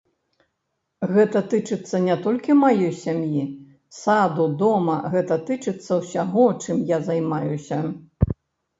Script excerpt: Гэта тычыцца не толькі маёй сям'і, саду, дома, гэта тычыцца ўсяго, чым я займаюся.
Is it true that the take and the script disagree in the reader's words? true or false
false